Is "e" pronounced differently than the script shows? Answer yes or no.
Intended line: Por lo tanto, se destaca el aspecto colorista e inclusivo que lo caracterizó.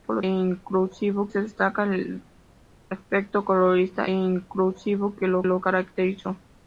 yes